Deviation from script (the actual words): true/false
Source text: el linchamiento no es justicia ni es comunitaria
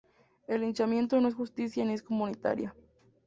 false